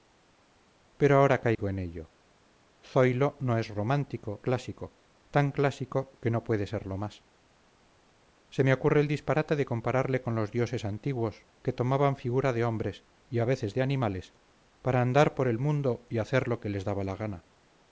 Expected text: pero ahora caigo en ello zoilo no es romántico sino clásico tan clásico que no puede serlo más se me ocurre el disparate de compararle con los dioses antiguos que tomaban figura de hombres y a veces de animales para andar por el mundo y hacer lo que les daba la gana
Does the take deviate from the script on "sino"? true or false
true